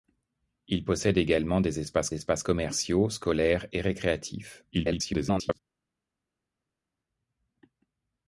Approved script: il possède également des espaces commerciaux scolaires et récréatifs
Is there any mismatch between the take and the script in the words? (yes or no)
yes